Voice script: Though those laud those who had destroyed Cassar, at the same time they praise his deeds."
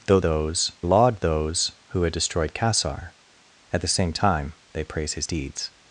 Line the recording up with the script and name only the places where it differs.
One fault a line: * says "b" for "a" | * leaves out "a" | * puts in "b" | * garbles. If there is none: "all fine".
all fine